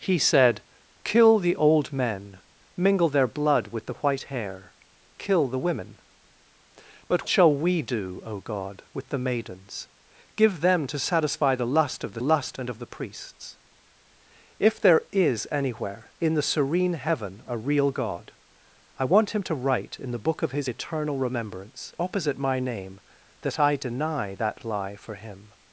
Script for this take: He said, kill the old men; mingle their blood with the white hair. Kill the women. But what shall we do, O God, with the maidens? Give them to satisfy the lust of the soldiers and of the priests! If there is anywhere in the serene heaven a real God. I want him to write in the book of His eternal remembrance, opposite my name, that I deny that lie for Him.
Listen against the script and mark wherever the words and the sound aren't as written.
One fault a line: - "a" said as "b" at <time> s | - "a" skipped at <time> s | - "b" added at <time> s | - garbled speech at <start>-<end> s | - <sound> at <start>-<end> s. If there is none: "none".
- "what" skipped at 7.3 s
- "soldiers" said as "lust" at 12.2 s